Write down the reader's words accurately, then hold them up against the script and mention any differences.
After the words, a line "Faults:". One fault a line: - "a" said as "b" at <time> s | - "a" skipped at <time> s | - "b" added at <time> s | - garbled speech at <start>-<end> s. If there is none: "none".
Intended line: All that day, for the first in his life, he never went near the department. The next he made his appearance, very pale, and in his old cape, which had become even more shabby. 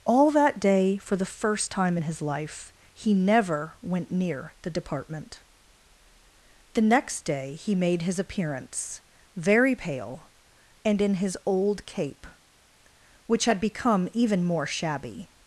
All that day, for the first time in his life, he never went near the department. The next day he made his appearance, very pale, and in his old cape, which had become even more shabby.
Faults:
- "time" added at 1.7 s
- "day" added at 7.2 s